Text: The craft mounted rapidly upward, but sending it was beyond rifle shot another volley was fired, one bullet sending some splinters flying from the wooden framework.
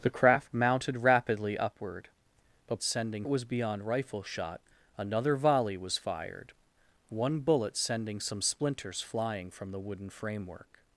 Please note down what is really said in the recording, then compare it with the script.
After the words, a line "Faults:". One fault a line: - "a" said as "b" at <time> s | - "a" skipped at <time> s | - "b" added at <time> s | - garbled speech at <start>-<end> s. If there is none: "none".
The craft mounted rapidly upward, but sending it was beyond rifle shot another volley was fired, one bullet sending some splinters flying from the wooden framework.
Faults:
none